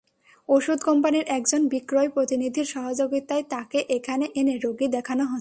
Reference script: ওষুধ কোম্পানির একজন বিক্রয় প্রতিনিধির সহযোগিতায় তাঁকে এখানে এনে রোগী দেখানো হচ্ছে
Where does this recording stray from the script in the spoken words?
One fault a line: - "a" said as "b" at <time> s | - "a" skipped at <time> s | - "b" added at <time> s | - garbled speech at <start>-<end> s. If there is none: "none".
none